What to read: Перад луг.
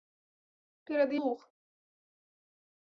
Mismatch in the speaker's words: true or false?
false